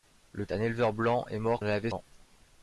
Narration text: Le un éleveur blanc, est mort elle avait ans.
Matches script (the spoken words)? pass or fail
pass